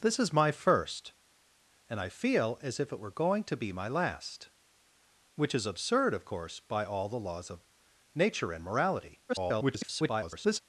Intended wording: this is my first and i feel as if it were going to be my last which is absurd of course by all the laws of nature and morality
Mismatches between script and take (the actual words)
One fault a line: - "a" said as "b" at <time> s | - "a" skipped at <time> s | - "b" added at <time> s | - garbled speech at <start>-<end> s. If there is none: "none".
- garbled speech at 9.3-10.6 s